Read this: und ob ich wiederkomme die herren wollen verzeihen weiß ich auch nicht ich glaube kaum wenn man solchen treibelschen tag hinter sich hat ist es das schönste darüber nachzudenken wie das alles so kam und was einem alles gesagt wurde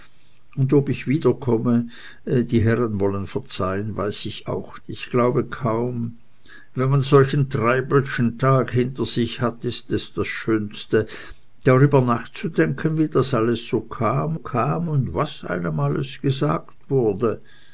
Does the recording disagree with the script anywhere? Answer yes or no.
yes